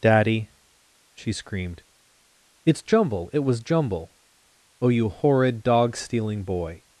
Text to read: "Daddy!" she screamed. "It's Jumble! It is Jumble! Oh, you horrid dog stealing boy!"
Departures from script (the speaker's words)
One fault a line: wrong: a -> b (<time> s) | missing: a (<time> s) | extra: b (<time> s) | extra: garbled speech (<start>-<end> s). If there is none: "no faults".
wrong: is -> was (3.4 s)